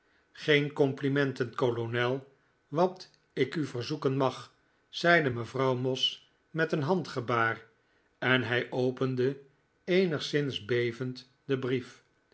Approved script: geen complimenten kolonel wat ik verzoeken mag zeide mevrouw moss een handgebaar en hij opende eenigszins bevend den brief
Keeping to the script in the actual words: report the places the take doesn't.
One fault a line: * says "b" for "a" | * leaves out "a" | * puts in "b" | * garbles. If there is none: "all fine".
* puts in "u"
* puts in "met"